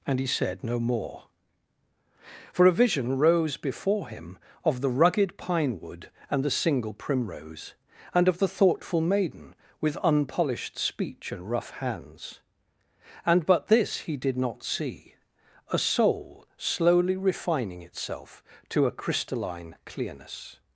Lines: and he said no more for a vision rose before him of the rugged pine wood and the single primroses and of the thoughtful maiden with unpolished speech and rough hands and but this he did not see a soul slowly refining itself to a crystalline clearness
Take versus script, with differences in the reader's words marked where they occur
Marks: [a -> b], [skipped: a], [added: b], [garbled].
and he said no more for a vision rose before him of the rugged pine wood and the single [primroses -> primrose] and of the thoughtful maiden with unpolished speech and rough hands and but this he did not see a soul slowly refining itself to a crystalline clearness